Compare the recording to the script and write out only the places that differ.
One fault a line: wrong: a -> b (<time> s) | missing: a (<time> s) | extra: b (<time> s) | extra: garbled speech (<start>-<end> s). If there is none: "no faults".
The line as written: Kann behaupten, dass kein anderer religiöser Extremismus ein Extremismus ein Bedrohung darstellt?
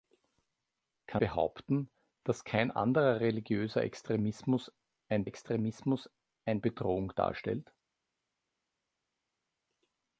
no faults